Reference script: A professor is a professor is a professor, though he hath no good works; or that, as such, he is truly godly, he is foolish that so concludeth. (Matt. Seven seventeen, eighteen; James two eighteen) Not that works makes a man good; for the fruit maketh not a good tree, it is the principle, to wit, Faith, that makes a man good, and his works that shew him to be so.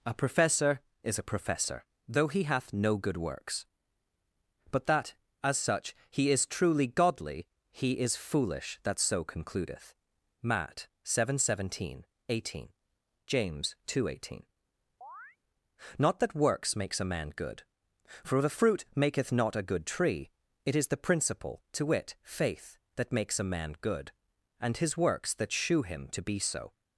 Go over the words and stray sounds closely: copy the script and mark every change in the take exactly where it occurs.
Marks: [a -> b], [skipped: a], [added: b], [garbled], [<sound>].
A professor is a professor [skipped: is a professor,] though he hath no good works; [or -> but] that, as such, he is truly godly, he is foolish that so concludeth. (Matt. Seven seventeen, eighteen; James two eighteen) [chirp] Not that works makes a man good; for the fruit maketh not a good tree, it is the principle, to wit, Faith, that makes a man good, and his works that shew him to be so.